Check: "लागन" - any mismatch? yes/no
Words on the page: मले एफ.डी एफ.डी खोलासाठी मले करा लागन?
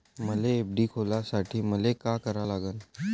no